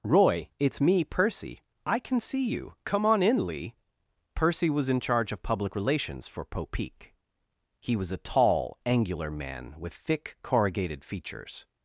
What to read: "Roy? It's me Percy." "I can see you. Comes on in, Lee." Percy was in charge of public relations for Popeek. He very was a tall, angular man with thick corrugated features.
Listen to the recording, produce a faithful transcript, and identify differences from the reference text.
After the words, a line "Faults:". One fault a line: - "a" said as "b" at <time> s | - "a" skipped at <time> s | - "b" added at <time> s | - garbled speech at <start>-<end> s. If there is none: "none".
"Roy? It's me Percy." "I can see you. Come on in, Lee." Percy was in charge of public relations for Popeek. He was a tall, angular man with thick corrugated features.
Faults:
- "Comes" said as "Come" at 2.8 s
- "very" skipped at 8.0 s